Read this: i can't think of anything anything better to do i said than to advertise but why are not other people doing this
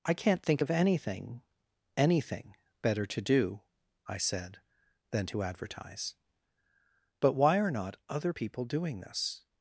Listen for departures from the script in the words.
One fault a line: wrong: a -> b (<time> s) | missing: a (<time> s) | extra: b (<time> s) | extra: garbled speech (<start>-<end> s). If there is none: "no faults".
no faults